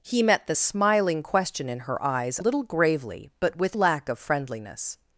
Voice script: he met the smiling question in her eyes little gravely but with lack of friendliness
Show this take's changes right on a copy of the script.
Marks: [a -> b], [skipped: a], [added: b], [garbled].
he met the smiling question in her eyes little gravely but with lack of friendliness